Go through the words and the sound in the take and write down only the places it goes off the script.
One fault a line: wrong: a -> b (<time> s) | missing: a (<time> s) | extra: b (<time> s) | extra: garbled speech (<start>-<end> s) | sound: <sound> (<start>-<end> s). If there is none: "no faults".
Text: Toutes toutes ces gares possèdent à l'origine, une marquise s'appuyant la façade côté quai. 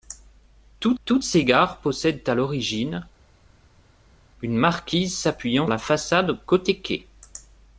no faults